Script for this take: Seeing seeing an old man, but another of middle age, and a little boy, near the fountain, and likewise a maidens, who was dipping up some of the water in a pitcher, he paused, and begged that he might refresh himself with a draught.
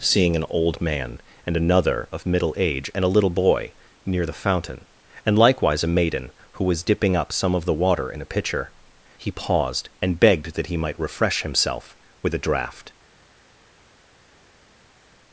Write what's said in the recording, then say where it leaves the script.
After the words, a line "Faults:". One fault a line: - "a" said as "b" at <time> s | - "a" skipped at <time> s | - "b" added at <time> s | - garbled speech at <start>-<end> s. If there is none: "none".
Seeing an old man, and another of middle age, and a little boy, near the fountain, and likewise a maiden, who was dipping up some of the water in a pitcher, he paused, and begged that he might refresh himself with a draught.
Faults:
- "seeing" skipped at 0.3 s
- "but" said as "and" at 1.4 s
- "maidens" said as "maiden" at 5.9 s